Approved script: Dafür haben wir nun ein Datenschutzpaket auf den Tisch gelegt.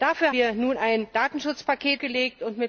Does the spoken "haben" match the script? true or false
false